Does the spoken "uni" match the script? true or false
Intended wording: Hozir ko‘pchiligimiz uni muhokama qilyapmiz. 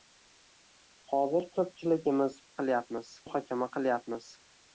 false